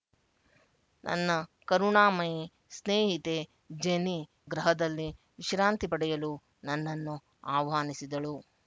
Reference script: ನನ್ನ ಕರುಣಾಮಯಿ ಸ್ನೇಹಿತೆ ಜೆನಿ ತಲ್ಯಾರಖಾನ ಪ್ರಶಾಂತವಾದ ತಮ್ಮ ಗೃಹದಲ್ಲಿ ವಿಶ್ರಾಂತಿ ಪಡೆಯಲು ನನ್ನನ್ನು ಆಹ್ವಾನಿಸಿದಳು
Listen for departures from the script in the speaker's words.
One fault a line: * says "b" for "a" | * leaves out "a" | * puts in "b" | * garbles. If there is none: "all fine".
* leaves out "ತಲ್ಯಾರಖಾನ ಪ್ರಶಾಂತವಾದ ತಮ್ಮ"